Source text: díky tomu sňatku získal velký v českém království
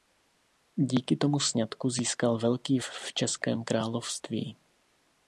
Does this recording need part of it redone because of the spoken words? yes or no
no